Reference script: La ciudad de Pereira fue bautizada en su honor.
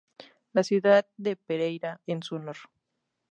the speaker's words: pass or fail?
fail